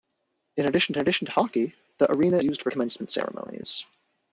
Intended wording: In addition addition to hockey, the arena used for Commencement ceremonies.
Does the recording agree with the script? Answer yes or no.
yes